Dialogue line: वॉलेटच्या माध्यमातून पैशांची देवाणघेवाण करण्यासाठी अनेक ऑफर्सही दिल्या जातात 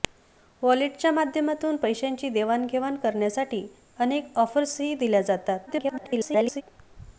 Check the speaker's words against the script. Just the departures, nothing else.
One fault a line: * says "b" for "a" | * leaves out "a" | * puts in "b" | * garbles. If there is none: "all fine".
* garbles